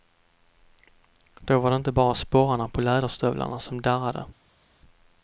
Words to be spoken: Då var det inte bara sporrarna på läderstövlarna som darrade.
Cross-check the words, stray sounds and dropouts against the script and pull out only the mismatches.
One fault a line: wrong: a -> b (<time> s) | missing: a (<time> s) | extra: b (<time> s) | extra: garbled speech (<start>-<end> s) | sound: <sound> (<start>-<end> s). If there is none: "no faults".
no faults